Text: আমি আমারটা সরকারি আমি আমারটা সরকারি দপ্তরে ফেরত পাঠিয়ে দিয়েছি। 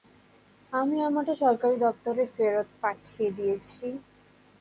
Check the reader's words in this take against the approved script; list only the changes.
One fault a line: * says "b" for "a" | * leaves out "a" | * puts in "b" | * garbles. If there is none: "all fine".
* leaves out "আমি আমারটা সরকারি"